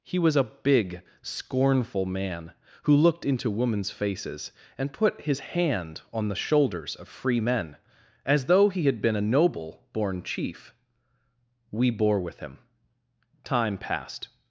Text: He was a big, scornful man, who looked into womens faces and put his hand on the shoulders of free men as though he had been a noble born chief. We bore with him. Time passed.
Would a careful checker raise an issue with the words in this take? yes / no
no